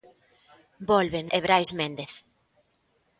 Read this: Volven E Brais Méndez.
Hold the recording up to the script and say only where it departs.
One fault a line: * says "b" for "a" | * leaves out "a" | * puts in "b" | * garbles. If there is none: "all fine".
all fine